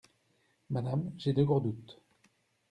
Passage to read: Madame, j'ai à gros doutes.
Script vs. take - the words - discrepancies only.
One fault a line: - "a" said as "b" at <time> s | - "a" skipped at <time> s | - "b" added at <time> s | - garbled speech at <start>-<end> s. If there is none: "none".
- "à" said as "de" at 1.3 s